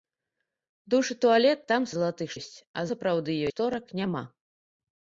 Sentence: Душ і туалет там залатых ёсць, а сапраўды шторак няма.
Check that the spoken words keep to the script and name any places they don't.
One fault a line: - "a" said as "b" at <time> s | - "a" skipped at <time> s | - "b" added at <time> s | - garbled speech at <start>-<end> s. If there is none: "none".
none